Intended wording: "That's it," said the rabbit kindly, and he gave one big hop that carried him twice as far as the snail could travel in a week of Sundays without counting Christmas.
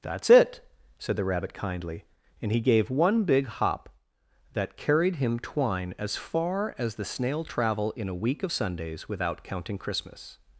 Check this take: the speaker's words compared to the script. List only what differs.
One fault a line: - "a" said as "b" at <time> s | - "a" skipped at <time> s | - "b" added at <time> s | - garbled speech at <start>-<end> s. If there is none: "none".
- "twice" said as "twine" at 5.4 s
- "could" skipped at 7.4 s